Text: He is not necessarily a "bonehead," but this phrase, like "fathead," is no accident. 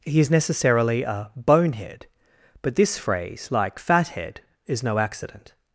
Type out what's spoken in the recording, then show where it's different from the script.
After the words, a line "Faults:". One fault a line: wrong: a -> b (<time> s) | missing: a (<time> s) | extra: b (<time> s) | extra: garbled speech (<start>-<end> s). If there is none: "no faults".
He is necessarily a "bonehead," but this phrase, like "fathead," is no accident.
Faults:
missing: not (0.3 s)